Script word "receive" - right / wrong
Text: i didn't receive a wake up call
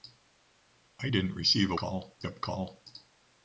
right